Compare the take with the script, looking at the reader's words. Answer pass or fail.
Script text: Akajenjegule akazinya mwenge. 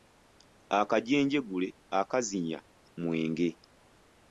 pass